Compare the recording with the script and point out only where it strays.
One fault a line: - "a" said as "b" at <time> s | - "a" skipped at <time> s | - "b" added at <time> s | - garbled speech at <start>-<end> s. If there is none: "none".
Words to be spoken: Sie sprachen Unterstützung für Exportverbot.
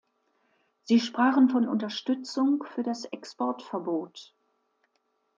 - "von" added at 1.5 s
- "das" added at 2.8 s